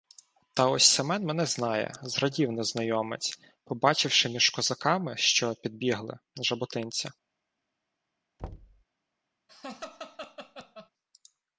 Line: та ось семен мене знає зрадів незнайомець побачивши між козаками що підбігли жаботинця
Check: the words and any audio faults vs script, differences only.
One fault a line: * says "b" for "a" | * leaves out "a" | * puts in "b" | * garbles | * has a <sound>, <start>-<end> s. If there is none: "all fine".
* has a thud, 8.4-8.8 s
* has a laugh, 9.5-10.9 s